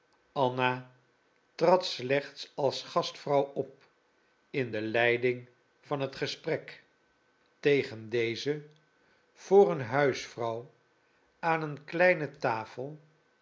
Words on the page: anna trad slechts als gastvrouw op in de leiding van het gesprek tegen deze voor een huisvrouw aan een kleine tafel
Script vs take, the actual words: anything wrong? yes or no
no